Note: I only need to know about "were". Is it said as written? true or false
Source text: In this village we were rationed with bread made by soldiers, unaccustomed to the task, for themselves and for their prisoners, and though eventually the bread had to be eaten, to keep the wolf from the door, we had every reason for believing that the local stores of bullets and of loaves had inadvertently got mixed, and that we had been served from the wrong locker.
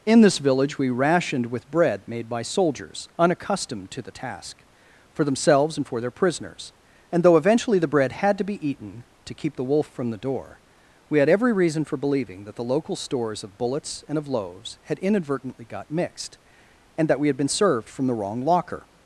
false